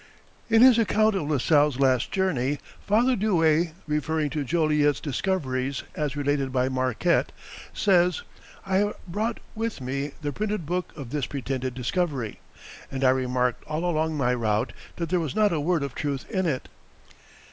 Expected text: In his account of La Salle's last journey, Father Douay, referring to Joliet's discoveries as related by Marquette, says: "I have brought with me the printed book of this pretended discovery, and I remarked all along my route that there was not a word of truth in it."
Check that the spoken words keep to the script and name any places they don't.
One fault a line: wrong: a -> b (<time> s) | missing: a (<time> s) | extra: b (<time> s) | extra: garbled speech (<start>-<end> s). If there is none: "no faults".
no faults